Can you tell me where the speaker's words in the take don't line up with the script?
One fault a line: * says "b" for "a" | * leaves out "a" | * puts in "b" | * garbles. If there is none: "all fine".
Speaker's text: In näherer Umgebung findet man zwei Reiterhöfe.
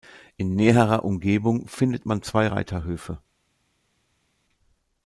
all fine